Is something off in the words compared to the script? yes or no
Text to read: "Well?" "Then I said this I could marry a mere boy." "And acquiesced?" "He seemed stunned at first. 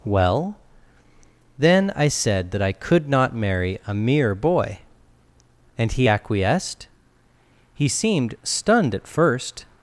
yes